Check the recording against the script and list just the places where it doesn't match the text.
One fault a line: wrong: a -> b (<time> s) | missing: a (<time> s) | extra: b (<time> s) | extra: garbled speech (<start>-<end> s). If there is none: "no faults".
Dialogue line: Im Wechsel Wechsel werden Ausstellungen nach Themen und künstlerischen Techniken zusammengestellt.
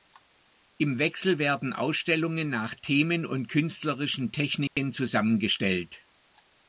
missing: Wechsel (1.4 s)